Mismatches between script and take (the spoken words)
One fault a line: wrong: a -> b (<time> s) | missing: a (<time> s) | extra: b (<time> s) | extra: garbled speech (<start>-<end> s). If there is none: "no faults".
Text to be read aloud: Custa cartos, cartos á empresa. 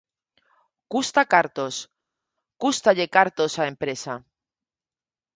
extra: cústalle (2.6 s)